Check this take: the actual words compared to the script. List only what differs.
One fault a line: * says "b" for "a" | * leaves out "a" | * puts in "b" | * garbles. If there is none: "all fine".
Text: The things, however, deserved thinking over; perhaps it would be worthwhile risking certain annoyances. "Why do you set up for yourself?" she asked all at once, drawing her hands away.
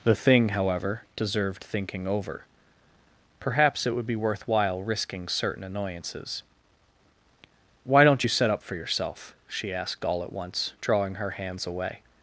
* says "thing" for "things"
* says "don't" for "do"